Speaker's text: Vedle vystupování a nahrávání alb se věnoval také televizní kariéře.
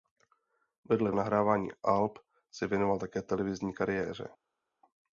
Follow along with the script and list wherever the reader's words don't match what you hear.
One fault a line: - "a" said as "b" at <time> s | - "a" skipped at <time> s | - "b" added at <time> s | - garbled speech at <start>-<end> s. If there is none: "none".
- "vystupování" skipped at 1.1 s